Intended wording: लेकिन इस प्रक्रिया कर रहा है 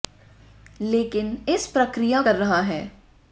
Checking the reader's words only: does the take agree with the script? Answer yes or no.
yes